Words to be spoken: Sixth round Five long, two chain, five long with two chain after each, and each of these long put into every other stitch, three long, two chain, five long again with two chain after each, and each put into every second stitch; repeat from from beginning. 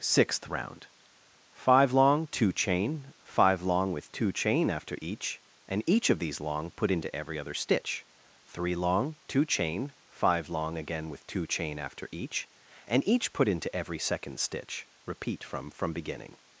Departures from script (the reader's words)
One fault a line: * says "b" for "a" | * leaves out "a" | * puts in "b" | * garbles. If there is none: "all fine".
all fine